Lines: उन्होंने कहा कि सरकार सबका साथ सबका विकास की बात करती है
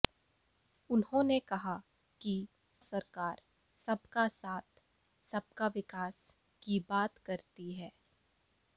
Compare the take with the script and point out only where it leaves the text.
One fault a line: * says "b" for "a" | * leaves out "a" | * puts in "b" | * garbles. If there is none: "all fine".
all fine